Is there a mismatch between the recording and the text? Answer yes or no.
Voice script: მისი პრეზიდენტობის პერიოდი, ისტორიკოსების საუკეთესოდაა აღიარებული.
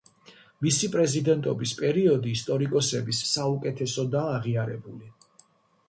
no